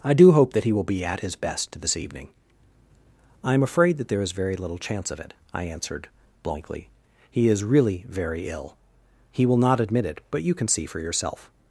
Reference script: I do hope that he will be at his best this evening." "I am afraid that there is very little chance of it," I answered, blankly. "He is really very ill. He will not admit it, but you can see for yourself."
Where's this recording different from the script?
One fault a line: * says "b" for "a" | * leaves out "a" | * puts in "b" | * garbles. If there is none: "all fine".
all fine